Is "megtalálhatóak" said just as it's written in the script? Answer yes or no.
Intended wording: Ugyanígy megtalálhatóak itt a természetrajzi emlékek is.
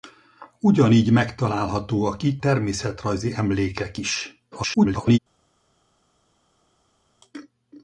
yes